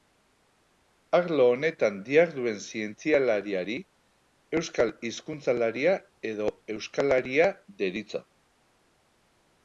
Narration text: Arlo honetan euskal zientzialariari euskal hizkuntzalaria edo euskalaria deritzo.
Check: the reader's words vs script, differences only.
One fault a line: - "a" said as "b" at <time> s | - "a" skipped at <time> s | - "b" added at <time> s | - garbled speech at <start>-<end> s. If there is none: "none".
- "euskal" said as "diharduen" at 2.0 s